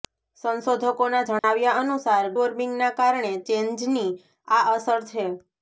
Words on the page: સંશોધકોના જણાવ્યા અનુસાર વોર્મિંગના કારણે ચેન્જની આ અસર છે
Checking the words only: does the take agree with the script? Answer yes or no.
yes